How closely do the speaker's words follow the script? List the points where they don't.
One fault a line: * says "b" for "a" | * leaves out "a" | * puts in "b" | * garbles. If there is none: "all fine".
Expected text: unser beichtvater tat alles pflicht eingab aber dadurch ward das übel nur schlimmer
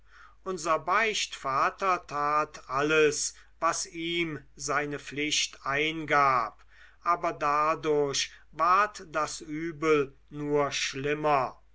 * puts in "was ihm seine"